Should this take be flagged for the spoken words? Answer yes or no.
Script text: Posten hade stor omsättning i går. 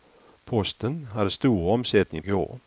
no